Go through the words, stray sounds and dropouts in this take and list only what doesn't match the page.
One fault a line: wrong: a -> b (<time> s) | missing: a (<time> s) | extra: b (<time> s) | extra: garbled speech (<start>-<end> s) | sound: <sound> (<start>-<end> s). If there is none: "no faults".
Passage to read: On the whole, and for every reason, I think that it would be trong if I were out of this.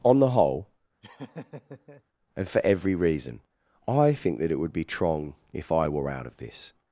sound: laugh (1.0-2.0 s)